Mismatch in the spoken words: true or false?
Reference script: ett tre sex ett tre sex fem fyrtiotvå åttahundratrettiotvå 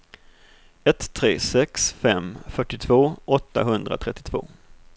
true